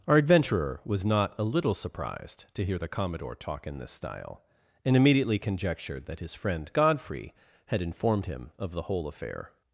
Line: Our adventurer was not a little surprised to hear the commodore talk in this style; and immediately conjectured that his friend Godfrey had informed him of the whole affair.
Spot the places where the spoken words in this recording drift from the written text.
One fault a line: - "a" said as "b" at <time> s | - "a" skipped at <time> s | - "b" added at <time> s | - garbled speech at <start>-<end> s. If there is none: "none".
none